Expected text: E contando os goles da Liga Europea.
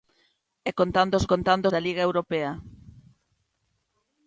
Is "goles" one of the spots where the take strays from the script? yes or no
yes